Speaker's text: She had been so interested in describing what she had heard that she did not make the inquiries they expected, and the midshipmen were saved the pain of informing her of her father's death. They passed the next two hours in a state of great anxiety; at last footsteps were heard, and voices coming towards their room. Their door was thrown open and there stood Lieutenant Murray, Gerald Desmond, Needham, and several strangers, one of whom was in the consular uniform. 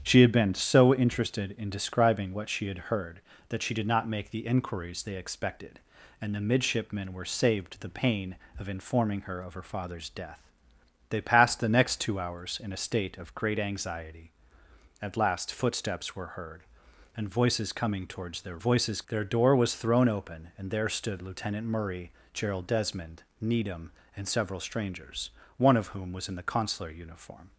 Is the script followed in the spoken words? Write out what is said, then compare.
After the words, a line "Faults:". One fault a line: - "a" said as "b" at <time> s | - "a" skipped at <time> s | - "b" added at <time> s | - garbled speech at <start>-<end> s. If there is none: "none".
She had been so interested in describing what she had heard that she did not make the inquiries they expected, and the midshipmen were saved the pain of informing her of her father's death. They passed the next two hours in a state of great anxiety; at last footsteps were heard, and voices coming towards their voices. Their door was thrown open and there stood Lieutenant Murray, Gerald Desmond, Needham, and several strangers, one of whom was in the consular uniform.
Faults:
- "room" said as "voices" at 18.6 s